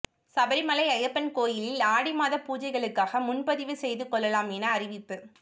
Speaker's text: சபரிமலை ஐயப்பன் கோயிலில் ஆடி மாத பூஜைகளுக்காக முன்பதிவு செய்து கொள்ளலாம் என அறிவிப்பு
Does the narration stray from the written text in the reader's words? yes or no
no